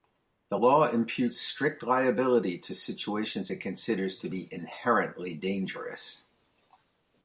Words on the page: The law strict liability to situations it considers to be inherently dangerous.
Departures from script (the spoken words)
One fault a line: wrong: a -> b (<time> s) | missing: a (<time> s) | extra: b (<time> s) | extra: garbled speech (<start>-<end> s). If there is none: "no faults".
extra: imputes (0.9 s)